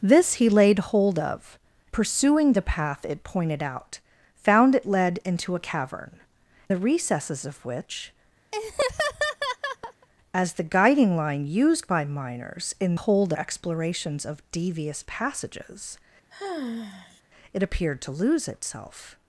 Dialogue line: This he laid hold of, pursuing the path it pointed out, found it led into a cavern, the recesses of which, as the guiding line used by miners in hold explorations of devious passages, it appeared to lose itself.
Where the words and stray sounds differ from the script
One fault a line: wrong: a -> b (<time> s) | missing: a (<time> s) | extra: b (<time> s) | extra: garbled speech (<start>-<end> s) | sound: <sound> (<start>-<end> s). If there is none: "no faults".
sound: laugh (8.5-10.1 s)
sound: sigh (16.3-17.2 s)